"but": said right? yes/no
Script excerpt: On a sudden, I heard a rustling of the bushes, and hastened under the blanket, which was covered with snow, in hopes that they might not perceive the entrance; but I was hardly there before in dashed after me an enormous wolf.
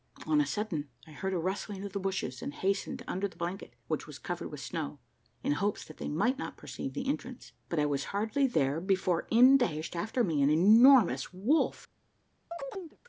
yes